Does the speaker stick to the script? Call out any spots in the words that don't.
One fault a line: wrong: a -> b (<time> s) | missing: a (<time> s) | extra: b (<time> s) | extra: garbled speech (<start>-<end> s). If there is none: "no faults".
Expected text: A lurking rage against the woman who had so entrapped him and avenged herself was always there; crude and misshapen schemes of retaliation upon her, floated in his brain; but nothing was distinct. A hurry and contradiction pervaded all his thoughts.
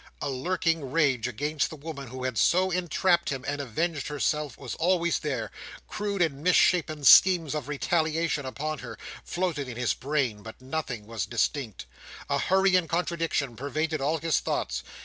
no faults